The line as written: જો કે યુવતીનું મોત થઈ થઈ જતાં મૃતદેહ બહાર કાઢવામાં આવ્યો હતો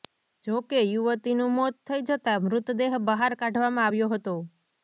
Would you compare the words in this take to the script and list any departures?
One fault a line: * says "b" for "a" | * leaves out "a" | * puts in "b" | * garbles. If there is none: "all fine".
* leaves out "થઈ"